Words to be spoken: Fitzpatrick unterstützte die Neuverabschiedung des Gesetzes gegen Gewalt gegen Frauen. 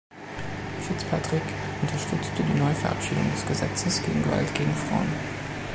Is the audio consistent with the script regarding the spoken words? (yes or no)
yes